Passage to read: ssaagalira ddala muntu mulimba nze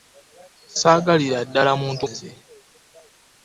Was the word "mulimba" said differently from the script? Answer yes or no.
yes